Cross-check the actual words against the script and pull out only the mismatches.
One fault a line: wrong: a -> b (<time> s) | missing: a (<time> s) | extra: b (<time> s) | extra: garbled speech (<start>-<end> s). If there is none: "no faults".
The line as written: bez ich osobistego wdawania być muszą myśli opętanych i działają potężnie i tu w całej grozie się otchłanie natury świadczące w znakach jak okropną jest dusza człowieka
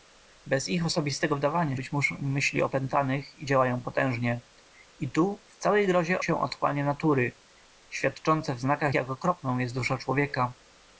no faults